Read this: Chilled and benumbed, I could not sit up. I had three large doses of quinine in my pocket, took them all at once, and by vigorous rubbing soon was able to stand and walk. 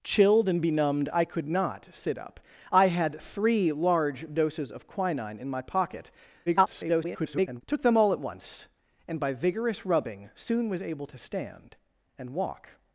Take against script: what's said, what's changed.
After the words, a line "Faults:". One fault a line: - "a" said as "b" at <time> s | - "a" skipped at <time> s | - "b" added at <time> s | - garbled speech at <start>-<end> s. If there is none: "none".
Chilled and benumbed, I could not sit up. I had three large doses of quinine in my pocket, [garbled] took them all at once, and by vigorous rubbing soon was able to stand and walk.
Faults:
- garbled speech at 6.5-7.6 s